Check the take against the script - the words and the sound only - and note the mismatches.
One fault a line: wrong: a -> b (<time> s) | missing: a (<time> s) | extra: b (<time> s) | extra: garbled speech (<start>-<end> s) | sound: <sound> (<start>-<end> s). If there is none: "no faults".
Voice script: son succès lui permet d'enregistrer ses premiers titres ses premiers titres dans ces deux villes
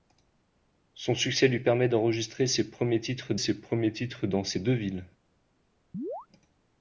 sound: chirp (5.9-6.3 s)